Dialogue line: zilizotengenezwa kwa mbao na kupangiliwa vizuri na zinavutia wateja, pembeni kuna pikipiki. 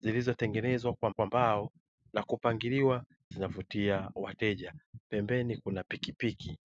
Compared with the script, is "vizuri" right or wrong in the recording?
wrong